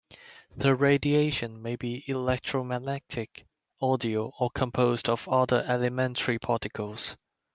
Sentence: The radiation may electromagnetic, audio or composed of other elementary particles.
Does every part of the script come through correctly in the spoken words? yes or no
no